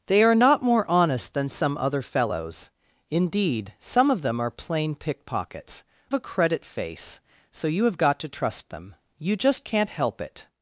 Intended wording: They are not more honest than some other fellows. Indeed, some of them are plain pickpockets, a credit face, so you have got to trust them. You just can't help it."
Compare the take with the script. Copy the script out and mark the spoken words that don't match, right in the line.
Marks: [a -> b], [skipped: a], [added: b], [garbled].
They are not more honest than some other fellows. Indeed, some of them are plain pickpockets, a credit face, so you have got to trust them. You just can't help it."